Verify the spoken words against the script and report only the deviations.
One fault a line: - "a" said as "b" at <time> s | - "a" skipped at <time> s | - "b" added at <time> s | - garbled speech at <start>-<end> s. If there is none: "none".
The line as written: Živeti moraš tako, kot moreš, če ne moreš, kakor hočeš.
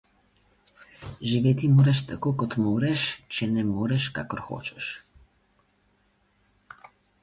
none